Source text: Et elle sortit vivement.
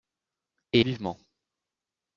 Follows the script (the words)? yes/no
no